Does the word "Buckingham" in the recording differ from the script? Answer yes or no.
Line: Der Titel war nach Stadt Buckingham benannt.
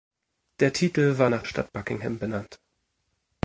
no